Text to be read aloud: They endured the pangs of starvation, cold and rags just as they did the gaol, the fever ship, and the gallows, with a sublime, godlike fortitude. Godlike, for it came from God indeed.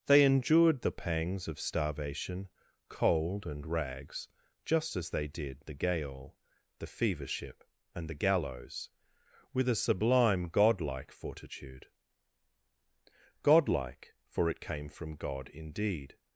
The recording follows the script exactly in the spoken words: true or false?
true